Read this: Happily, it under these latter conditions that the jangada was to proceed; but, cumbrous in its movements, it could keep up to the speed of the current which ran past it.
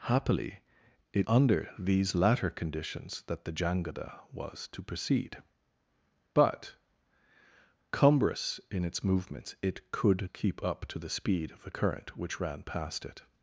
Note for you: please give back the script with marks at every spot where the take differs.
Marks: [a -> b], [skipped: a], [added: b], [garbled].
Happily, it under these latter conditions that the jangada was to proceed; but, cumbrous in its movements, it could keep up to the speed of the current which ran past it.